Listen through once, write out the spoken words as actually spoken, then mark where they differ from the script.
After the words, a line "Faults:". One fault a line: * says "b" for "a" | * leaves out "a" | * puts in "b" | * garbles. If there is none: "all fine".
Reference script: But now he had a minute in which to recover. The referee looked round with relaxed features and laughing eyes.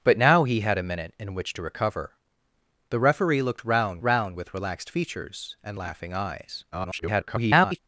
But now he had a minute in which to recover. The referee looked round round with relaxed features and laughing eyes. [garbled]
Faults:
* puts in "round"
* garbles